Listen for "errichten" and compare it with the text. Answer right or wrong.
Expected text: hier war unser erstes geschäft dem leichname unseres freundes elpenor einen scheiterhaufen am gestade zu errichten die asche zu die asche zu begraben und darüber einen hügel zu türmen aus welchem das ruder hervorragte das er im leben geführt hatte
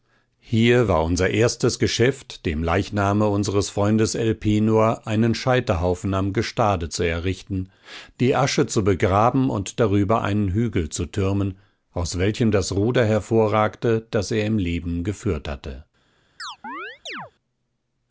right